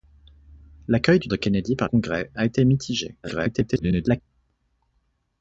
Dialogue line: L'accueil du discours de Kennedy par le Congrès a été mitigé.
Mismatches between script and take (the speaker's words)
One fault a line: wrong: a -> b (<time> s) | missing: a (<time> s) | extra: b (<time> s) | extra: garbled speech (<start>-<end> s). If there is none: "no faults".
missing: discours (1.3 s)
missing: le (1.9 s)
extra: garbled speech (3.2-4.2 s)